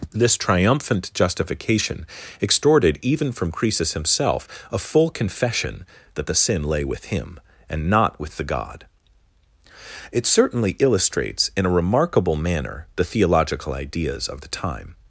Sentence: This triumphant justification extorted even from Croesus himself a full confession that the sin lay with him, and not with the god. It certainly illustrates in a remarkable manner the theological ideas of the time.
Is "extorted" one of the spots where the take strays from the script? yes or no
no